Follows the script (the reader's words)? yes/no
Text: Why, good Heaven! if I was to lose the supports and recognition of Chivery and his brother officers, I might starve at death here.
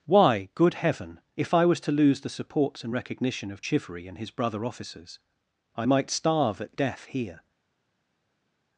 yes